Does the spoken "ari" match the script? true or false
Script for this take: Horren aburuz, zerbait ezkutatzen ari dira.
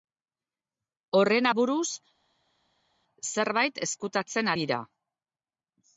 false